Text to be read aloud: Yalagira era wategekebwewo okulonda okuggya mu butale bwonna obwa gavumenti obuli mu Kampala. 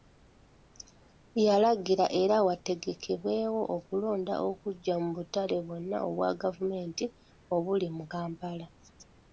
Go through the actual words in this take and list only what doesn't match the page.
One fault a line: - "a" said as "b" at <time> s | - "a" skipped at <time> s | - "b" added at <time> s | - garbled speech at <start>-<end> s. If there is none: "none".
none